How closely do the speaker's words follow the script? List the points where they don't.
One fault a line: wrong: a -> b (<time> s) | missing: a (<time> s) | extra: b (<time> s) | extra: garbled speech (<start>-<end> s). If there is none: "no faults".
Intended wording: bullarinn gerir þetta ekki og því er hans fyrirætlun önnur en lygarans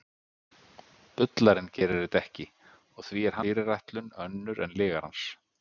missing: hans (3.4 s)